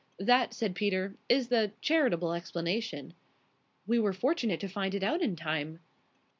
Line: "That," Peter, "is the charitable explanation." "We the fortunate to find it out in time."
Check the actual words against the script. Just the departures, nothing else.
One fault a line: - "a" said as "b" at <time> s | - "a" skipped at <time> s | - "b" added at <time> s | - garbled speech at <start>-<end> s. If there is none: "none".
- "said" added at 0.5 s
- "the" said as "were" at 4.0 s